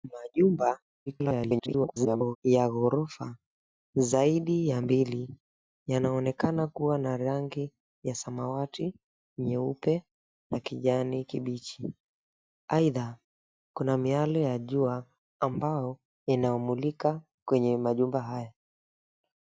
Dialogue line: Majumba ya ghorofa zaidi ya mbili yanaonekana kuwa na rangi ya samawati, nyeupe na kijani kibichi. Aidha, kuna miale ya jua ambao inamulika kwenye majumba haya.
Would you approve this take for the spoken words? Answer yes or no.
no